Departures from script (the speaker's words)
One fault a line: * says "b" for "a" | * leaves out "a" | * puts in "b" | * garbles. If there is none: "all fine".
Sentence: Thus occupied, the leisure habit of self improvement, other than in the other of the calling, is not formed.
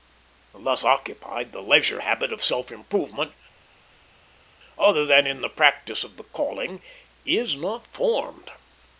* says "practice" for "other"